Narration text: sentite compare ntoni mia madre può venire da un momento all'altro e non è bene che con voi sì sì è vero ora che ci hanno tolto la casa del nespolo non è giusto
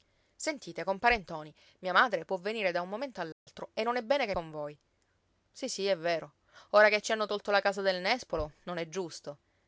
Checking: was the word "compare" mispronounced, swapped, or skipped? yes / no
no